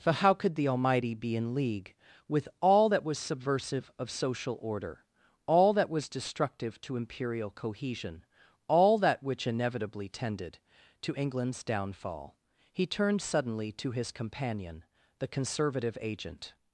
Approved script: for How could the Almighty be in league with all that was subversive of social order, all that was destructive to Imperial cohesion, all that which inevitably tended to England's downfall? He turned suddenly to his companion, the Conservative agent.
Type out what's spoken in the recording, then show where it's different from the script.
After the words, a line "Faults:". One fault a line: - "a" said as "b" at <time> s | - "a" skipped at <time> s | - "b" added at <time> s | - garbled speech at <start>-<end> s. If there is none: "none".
for How could the Almighty be in league with all that was subversive of social order, all that was destructive to Imperial cohesion, all that which inevitably tended to England's downfall? He turned suddenly to his companion, the Conservative agent.
Faults:
none